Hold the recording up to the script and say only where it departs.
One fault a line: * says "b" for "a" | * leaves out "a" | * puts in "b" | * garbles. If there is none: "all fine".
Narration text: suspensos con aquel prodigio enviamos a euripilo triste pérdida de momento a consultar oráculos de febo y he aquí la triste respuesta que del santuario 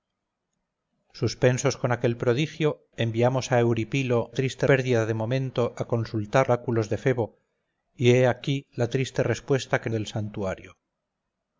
all fine